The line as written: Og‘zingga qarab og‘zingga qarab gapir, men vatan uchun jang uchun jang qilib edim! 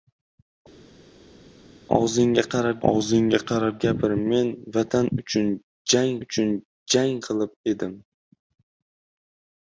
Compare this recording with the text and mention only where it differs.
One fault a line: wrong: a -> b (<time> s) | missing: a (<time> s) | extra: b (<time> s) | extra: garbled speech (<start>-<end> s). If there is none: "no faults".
no faults